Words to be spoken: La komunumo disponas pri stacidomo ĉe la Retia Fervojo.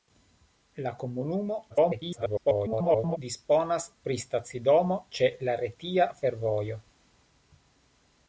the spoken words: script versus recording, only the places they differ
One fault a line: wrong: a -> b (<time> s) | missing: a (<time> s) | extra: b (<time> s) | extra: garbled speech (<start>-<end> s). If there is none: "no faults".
extra: garbled speech (1.7-3.2 s)